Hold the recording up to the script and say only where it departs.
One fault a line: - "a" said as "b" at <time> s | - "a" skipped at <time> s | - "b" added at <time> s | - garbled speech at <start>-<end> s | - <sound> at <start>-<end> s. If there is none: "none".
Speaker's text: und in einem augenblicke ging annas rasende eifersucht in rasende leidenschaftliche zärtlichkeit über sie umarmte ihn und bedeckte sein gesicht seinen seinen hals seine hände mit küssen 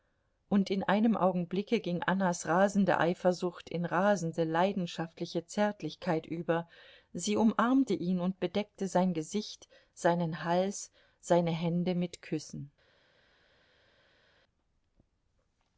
- "seinen" skipped at 10.4 s